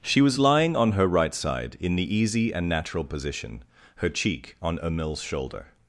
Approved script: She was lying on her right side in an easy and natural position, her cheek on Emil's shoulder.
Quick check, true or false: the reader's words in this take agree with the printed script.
false